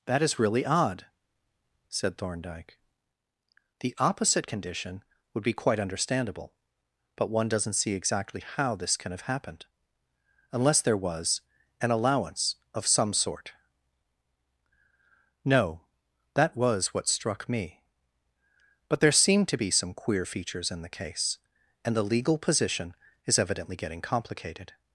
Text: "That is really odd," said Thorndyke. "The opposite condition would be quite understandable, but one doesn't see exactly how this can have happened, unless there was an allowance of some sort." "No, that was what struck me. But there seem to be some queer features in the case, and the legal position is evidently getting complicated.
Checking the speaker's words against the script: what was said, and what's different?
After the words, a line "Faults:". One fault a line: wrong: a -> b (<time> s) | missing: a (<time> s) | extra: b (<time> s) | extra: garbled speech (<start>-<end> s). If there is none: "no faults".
"That is really odd," said Thorndyke. "The opposite condition would be quite understandable, but one doesn't see exactly how this can have happened, unless there was an allowance of some sort." "No, that was what struck me. But there seem to be some queer features in the case, and the legal position is evidently getting complicated.
Faults:
no faults